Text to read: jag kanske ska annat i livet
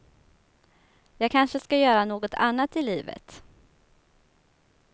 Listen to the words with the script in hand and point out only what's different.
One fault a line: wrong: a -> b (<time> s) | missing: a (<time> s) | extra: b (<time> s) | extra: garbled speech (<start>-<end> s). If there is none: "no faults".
extra: göra något (1.8 s)